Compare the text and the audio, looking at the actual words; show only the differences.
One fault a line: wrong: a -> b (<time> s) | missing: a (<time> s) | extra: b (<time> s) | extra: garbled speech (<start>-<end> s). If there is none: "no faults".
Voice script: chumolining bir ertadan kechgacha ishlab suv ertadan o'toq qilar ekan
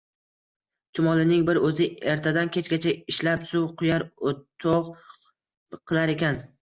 extra: o'zi (1.7 s)
wrong: ertadan -> quyar (3.8 s)